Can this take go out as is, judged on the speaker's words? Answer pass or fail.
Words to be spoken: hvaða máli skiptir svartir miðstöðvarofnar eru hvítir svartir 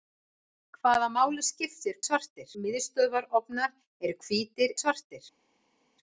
pass